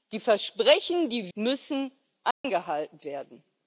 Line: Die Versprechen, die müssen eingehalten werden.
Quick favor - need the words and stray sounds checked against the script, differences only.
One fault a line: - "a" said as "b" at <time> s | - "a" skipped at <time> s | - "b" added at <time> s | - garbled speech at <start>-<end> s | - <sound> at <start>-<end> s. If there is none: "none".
- dropout at 2.3-2.4 s